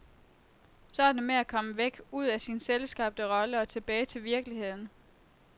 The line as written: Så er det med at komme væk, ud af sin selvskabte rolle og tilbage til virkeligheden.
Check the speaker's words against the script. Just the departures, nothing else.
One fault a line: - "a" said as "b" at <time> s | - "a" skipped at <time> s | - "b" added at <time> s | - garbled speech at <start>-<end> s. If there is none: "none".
none